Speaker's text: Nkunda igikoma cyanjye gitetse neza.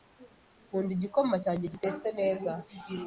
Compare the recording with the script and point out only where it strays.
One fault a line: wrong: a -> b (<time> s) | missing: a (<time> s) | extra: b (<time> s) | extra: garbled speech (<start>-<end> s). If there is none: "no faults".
no faults